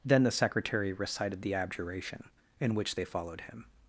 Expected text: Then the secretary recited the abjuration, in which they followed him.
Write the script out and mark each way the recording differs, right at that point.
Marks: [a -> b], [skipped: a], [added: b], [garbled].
Then the secretary recited the abjuration, in which they followed him.